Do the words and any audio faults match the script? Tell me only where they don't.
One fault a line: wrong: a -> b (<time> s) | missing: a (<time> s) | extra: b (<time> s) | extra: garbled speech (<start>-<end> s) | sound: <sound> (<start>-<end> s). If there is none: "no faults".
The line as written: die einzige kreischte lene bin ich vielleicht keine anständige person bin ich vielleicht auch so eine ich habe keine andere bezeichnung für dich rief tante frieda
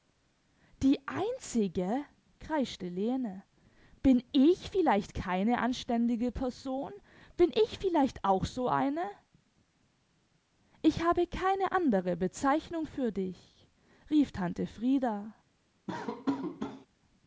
sound: laugh (15.9-16.9 s)